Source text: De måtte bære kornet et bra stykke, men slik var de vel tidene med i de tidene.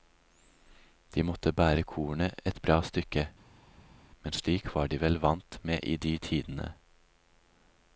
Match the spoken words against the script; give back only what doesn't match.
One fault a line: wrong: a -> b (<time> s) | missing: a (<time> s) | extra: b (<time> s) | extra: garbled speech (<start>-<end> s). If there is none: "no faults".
wrong: tidene -> vant (5.3 s)